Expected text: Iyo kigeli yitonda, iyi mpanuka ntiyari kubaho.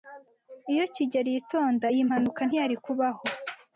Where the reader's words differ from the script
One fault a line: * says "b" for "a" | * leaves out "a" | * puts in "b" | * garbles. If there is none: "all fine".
all fine